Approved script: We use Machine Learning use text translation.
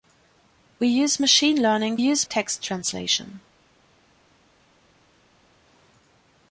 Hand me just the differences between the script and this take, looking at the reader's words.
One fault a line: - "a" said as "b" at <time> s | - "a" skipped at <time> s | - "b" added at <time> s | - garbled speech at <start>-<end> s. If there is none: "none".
none